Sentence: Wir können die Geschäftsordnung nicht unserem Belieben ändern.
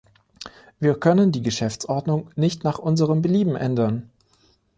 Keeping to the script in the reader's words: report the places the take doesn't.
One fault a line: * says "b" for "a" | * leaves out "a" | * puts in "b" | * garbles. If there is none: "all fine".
* puts in "nach"